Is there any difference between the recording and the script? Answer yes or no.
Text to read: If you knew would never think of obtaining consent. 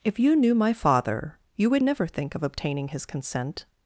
yes